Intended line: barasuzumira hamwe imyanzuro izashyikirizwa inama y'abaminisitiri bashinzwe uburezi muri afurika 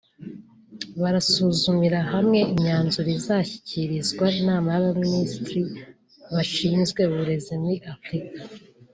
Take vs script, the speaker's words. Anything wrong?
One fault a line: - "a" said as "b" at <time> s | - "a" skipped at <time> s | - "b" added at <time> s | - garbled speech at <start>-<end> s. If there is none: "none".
none